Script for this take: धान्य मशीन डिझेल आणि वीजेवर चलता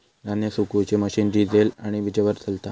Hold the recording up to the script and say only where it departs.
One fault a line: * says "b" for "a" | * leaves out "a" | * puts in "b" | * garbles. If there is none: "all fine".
* puts in "सुखवुची"